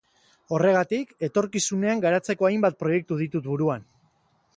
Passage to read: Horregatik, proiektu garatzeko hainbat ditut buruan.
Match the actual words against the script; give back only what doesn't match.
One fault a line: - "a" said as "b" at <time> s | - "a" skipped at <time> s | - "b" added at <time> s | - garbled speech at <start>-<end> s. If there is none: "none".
- "proiektu" said as "etorkizunean" at 1.3 s
- "proiektu" added at 2.8 s